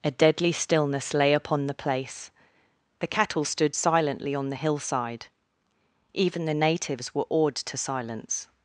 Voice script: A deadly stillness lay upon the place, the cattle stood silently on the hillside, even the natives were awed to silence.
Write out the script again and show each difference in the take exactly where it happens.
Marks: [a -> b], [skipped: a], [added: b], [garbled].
A deadly stillness lay upon the place, the cattle stood silently on the hillside, even the natives were awed to silence.